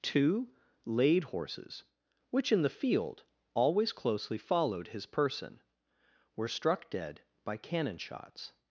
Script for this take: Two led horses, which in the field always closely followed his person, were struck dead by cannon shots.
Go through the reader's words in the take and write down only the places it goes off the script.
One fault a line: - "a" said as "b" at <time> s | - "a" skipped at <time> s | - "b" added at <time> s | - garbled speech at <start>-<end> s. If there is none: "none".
- "led" said as "laid" at 0.8 s